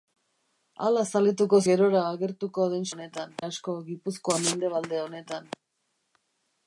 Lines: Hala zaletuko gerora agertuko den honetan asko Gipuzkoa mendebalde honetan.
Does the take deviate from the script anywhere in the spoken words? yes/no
no